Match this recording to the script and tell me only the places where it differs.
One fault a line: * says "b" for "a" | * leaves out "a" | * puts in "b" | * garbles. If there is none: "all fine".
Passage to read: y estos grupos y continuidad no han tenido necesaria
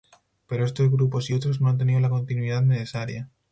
* says "pero" for "y"
* says "otros" for "continuidad"
* puts in "la continuidad"